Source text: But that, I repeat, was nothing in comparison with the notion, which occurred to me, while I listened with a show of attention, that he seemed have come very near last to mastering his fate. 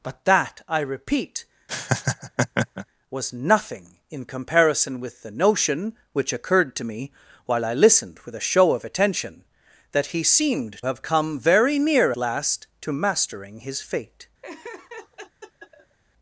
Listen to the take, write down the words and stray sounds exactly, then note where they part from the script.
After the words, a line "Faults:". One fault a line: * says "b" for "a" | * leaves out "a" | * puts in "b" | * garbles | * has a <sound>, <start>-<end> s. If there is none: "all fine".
But that, I repeat, was nothing in comparison with the notion, which occurred to me, while I listened with a show of attention, that he seemed have come very near last to mastering his fate.
Faults:
* has a laugh, 1.7-2.9 s
* has a laugh, 14.4-16.0 s